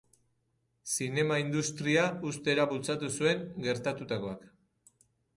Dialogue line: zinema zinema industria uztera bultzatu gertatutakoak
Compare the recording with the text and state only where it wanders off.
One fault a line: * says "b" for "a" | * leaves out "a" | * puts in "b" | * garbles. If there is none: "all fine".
* leaves out "zinema"
* puts in "zuen"